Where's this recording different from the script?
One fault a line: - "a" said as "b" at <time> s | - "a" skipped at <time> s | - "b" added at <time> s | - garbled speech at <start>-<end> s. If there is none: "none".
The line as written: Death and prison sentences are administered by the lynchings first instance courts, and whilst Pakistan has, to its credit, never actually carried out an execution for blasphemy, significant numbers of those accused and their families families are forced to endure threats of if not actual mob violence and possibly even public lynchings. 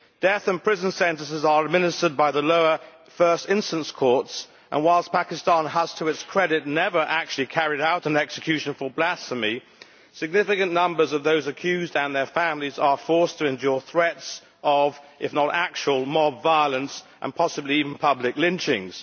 - "lynchings" said as "lower" at 2.4 s
- "families" skipped at 12.8 s